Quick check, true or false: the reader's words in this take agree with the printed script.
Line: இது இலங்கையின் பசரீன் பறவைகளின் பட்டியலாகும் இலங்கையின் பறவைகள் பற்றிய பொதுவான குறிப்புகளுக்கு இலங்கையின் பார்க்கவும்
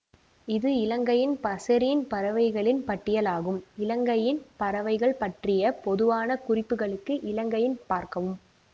true